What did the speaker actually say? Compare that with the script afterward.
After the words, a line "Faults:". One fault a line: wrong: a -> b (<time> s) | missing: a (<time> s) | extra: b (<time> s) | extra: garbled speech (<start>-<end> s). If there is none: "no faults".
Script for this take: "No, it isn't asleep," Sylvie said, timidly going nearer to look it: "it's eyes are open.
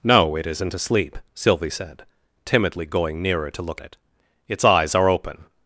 "No, it isn't asleep," Sylvie said, timidly going nearer to look it: "it's eyes are open.
Faults:
no faults